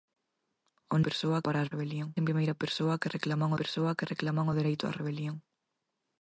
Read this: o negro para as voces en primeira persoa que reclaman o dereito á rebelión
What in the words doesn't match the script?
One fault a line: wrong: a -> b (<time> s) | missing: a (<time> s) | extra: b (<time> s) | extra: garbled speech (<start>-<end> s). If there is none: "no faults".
wrong: negro -> persoa (1.1 s)
wrong: voces -> rebelión (1.7 s)
extra: persoa que reclaman (3.6 s)